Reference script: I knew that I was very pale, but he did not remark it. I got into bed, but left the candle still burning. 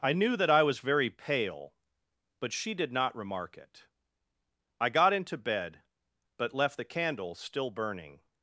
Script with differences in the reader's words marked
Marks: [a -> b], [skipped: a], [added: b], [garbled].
I knew that I was very pale, but [he -> she] did not remark it. I got into bed, but left the candle still burning.